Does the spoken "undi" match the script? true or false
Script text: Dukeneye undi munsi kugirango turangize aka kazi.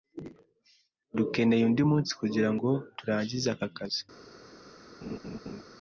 true